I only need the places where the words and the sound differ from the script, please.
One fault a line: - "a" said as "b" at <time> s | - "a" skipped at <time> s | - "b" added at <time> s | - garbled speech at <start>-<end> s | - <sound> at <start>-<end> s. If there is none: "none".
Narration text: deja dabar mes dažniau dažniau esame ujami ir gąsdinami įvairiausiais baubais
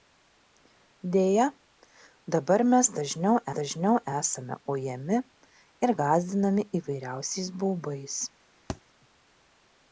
- thud at 8.7-8.8 s